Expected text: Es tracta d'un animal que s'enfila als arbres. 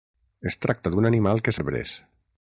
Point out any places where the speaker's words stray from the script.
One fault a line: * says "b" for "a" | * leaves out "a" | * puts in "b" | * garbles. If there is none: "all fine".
* leaves out "s'enfila als"